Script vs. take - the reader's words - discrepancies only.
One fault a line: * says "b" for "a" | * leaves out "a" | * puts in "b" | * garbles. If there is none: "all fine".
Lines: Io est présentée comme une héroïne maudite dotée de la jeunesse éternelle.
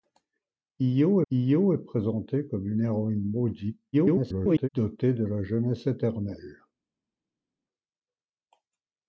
* puts in "io"
* garbles